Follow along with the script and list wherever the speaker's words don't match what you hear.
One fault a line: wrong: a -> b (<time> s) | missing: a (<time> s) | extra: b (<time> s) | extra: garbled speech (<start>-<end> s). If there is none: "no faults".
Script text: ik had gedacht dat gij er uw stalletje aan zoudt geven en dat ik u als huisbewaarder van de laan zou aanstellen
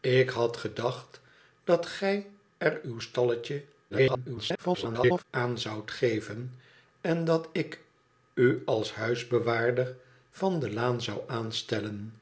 extra: garbled speech (3.9-5.2 s)